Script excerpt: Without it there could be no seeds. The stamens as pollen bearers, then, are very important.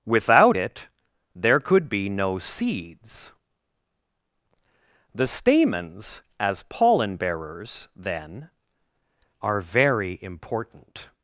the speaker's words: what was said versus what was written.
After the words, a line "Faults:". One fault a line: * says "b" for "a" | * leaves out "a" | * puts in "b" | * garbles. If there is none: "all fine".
Without it there could be no seeds. The stamens as pollen bearers, then, are very important.
Faults:
all fine